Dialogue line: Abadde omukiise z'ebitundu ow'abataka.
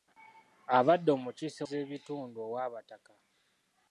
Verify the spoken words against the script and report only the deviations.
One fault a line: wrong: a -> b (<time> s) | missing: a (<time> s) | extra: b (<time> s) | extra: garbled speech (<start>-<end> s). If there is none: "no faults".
no faults